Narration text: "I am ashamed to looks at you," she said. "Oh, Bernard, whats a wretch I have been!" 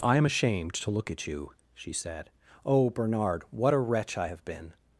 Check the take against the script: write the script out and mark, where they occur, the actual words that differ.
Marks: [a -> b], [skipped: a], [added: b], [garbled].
"I am ashamed to [looks -> look] at you," she said. "Oh, Bernard, [whats -> what] a wretch I have been!"